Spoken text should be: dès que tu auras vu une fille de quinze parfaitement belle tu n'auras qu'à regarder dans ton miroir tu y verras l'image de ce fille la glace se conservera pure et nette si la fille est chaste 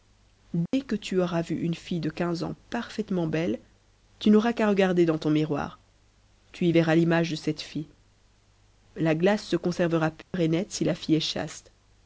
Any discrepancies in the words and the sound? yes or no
yes